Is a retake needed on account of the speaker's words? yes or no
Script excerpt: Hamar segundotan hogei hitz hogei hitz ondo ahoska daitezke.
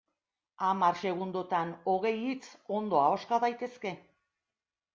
yes